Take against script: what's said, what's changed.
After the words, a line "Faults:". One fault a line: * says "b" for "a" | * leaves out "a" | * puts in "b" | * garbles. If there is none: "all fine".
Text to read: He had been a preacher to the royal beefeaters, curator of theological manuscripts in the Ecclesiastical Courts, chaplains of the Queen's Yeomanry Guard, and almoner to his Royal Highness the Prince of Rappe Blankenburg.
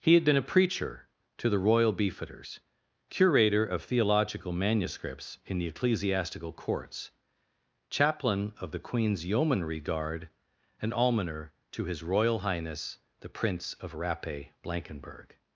He had been a preacher to the royal beefeaters, curator of theological manuscripts in the Ecclesiastical Courts, chaplain of the Queen's Yeomanry Guard, and almoner to his Royal Highness the Prince of Rappe Blankenburg.
Faults:
* says "chaplain" for "chaplains"